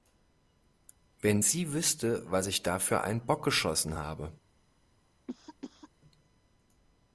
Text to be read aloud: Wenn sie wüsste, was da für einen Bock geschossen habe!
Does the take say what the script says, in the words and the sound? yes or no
no